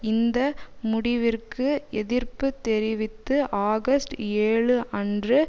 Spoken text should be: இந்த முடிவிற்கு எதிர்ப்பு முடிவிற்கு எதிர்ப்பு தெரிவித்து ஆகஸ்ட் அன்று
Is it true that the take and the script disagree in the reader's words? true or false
true